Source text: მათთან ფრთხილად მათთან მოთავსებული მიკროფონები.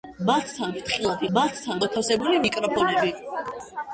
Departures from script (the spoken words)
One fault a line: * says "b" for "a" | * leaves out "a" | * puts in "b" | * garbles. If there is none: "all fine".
all fine